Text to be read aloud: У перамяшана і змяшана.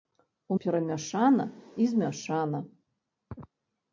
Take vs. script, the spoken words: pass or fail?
pass